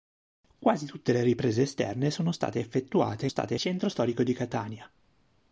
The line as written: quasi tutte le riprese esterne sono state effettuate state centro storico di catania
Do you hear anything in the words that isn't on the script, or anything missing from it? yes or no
no